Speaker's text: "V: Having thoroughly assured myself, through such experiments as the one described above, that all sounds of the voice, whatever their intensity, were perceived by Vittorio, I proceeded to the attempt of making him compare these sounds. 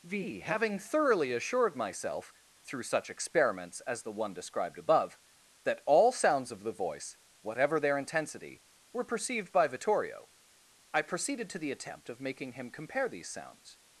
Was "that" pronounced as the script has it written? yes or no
yes